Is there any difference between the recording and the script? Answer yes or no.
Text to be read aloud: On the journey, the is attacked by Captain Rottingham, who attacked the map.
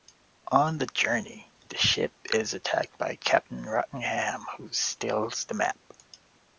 yes